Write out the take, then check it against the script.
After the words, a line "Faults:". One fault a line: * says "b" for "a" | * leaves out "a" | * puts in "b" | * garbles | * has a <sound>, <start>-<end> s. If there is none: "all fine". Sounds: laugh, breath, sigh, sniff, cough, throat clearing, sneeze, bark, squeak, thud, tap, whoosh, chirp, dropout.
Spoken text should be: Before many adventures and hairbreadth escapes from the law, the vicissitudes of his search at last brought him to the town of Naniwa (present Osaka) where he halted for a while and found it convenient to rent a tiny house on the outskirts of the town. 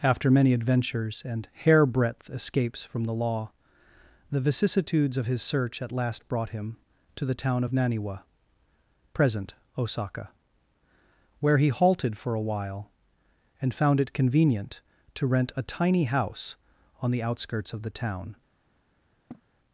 After many adventures and hairbreadth escapes from the law, the vicissitudes of his search at last brought him to the town of Naniwa (present Osaka) where he halted for a while and found it convenient to rent a tiny house on the outskirts of the town.
Faults:
* says "After" for "Before"
* has a sniff, 19.3-19.4 s